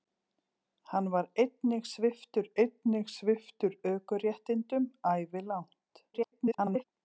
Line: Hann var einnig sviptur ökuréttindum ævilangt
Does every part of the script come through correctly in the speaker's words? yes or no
no